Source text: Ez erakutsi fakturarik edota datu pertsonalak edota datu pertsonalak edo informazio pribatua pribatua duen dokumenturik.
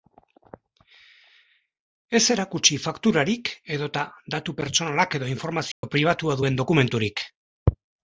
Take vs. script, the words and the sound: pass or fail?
fail